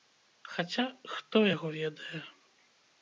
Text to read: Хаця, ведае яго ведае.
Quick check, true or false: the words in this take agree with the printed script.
false